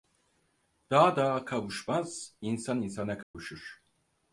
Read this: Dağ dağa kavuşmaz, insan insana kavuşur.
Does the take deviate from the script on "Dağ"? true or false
false